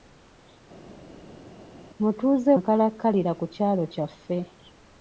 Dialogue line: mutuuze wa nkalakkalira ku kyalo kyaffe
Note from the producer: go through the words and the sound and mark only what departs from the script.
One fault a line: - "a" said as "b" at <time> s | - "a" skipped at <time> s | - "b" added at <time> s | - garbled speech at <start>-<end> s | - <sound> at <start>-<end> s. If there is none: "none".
- "wa" skipped at 2.5 s